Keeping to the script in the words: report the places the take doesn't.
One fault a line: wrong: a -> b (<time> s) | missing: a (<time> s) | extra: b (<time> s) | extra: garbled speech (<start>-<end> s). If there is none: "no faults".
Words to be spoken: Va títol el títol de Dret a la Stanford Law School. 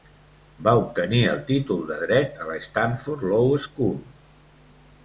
wrong: títol -> obtenir (0.8 s)